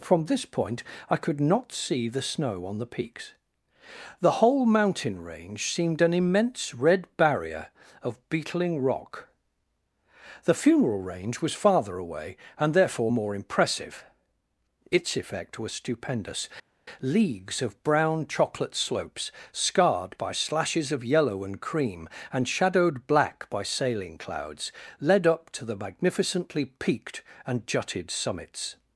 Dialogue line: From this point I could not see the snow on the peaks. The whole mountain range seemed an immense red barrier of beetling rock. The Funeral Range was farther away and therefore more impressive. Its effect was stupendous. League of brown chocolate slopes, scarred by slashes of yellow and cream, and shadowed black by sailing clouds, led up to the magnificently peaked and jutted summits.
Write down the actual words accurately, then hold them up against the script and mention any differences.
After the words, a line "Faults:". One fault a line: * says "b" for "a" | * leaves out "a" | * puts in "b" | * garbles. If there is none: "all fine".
From this point I could not see the snow on the peaks. The whole mountain range seemed an immense red barrier of beetling rock. The Funeral Range was farther away and therefore more impressive. Its effect was stupendous. Leagues of brown chocolate slopes, scarred by slashes of yellow and cream, and shadowed black by sailing clouds, led up to the magnificently peaked and jutted summits.
Faults:
* says "Leagues" for "League"